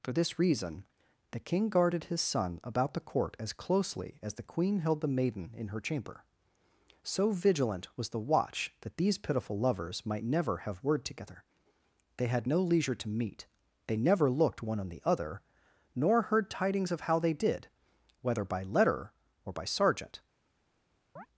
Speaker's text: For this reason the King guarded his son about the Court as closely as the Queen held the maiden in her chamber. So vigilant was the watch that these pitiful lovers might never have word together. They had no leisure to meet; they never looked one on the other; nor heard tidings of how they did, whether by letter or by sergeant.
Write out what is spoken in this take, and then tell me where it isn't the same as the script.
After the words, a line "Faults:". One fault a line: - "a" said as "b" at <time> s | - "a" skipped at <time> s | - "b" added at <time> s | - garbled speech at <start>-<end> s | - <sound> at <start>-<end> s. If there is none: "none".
For this reason the King guarded his son about the Court as closely as the Queen held the maiden in her chamber. So vigilant was the watch that these pitiful lovers might never have word together. They had no leisure to meet; they never looked one on the other; nor heard tidings of how they did, whether by letter or by sergeant.
Faults:
- chirp at 21.2-21.3 s